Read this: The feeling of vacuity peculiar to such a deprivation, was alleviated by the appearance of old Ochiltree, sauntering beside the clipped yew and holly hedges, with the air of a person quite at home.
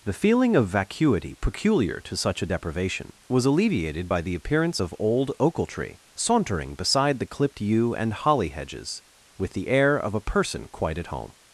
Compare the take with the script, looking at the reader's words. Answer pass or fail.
pass